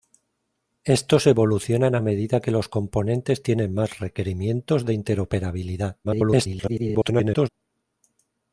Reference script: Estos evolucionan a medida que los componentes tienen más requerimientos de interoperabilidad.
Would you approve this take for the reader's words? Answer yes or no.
no